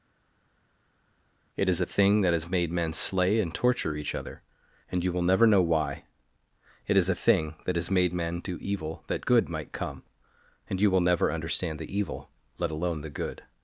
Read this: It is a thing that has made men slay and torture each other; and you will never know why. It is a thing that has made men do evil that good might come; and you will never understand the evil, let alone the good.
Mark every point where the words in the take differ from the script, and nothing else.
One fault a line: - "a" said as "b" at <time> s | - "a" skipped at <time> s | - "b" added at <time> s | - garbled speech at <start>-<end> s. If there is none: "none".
none